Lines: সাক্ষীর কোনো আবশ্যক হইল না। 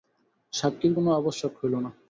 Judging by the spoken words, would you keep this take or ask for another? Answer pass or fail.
pass